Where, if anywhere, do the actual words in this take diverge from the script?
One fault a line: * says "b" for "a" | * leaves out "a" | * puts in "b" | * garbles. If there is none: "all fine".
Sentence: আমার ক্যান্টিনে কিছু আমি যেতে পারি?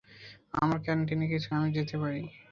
all fine